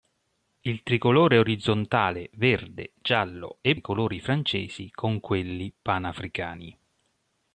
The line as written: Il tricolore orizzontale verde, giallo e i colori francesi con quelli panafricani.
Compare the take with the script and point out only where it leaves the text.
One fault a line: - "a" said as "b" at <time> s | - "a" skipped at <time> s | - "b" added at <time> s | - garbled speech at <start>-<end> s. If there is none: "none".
none